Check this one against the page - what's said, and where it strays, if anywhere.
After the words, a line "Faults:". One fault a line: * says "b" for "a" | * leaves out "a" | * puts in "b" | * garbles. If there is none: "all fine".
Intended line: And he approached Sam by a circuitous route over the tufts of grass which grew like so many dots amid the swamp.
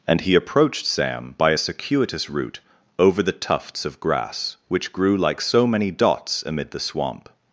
And he approached Sam by a circuitous route over the tufts of grass which grew like so many dots amid the swamp.
Faults:
all fine